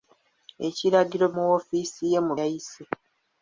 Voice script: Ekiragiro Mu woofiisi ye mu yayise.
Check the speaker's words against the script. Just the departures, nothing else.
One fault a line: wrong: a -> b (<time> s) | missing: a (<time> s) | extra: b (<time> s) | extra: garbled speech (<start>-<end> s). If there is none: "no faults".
no faults